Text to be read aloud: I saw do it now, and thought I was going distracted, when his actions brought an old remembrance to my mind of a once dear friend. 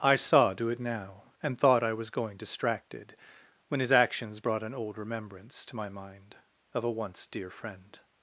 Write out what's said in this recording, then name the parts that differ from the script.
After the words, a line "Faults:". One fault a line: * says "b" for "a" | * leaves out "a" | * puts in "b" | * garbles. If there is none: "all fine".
I saw do it now, and thought I was going distracted, when his actions brought an old remembrance to my mind of a once dear friend.
Faults:
all fine